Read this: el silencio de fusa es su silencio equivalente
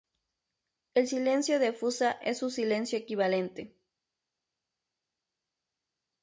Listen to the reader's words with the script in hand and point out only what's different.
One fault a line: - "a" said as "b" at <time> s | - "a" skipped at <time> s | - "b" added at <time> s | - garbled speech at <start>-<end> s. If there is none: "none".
none